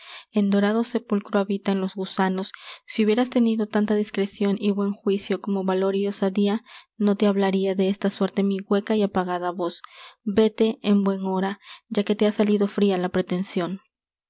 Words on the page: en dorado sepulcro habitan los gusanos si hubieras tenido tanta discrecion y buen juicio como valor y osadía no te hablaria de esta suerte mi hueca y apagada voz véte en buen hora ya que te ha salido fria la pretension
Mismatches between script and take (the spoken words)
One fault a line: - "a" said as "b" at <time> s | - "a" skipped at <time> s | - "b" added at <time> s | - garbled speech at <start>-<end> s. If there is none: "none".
none